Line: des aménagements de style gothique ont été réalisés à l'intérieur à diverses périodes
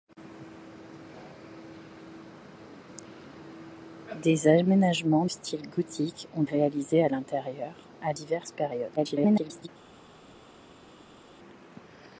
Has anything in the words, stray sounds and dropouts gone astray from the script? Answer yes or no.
yes